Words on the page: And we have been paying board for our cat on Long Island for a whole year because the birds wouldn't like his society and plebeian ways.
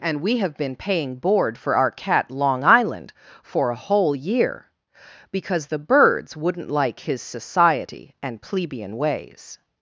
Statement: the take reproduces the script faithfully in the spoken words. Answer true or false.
false